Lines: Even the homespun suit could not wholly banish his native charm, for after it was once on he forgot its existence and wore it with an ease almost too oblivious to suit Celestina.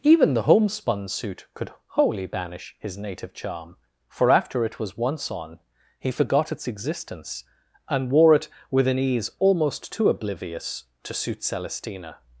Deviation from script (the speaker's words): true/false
true